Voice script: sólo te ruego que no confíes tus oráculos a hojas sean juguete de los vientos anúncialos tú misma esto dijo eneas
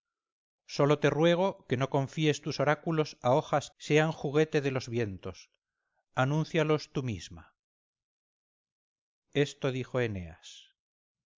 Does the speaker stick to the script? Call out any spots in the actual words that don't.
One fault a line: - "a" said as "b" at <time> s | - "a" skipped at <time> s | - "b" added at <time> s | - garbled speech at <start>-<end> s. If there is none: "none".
none